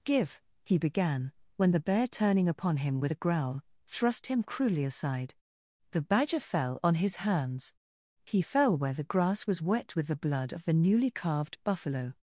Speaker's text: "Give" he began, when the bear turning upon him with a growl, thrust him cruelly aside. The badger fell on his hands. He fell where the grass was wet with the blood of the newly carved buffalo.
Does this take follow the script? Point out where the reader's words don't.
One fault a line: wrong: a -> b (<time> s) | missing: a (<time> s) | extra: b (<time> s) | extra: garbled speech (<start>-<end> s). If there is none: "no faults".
no faults